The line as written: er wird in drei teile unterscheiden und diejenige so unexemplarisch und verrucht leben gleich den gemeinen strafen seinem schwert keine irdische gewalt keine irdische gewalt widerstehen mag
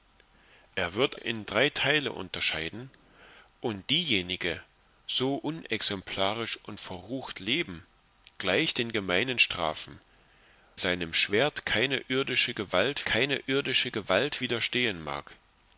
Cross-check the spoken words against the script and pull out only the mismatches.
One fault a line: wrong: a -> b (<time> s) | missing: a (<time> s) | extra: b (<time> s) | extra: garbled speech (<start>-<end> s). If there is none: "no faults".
no faults